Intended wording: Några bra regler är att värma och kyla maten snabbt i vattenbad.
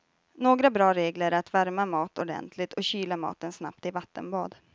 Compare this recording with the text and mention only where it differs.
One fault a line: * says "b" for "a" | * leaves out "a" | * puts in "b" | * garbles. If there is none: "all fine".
* puts in "mat ordentligt"